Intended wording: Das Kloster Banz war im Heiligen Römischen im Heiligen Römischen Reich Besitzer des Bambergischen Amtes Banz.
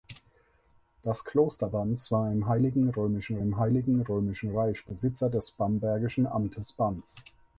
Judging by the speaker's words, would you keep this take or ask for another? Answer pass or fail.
pass